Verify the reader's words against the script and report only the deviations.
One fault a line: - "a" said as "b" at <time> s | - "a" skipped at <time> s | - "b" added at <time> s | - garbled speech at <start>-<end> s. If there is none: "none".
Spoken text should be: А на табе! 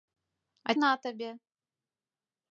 none